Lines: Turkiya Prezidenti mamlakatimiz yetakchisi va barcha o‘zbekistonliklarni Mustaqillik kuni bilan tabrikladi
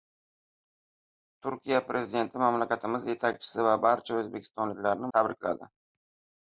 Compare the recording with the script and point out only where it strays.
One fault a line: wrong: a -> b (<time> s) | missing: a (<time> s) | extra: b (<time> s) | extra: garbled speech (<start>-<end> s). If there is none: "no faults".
missing: Mustaqillik kuni bilan (5.1 s)